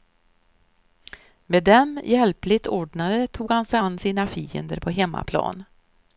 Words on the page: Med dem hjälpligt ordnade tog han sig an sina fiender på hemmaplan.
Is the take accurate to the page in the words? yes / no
yes